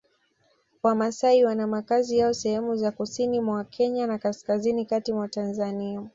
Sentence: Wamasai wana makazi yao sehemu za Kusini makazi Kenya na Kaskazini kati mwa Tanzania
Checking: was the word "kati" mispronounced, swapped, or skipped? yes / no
no